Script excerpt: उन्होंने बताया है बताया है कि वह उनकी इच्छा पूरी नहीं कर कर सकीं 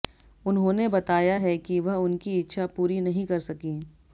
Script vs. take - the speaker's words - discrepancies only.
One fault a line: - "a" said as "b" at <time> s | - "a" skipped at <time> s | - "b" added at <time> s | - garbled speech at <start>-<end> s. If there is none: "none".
- "बताया है" skipped at 1.6 s
- "कर" skipped at 3.4 s